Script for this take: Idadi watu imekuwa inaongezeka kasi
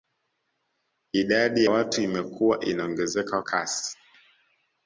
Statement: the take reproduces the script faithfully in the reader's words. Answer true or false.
true